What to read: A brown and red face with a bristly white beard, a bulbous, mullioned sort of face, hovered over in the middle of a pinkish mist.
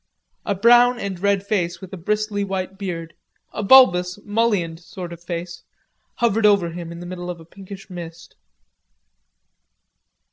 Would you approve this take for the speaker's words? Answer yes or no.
no